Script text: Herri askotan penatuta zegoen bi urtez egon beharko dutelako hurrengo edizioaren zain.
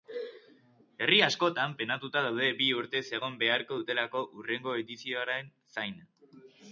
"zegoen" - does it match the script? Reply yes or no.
no